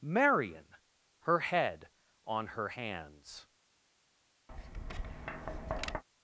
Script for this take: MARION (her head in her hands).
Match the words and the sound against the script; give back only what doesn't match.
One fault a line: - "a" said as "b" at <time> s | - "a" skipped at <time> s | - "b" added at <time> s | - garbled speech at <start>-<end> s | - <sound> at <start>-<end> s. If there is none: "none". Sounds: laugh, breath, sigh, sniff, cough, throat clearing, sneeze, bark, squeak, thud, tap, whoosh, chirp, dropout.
- "in" said as "on" at 2.2 s
- tap at 4.5-6.0 s